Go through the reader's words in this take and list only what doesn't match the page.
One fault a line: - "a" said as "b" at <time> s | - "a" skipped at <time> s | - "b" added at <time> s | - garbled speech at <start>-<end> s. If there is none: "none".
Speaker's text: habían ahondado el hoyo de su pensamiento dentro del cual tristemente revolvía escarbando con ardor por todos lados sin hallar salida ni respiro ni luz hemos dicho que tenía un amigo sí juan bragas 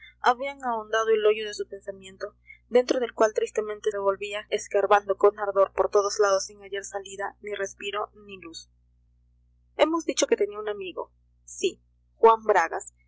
none